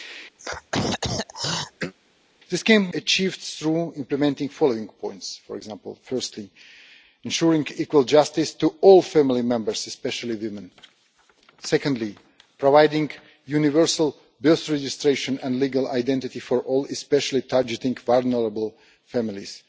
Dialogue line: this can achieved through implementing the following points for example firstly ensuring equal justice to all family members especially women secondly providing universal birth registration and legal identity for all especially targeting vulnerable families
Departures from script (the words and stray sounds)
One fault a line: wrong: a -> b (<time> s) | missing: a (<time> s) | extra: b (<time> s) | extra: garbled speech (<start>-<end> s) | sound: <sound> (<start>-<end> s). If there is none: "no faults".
sound: throat clearing (0.4-1.9 s)